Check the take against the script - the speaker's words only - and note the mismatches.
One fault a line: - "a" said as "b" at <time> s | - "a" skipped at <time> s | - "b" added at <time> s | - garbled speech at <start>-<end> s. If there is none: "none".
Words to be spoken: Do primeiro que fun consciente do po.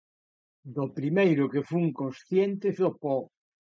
none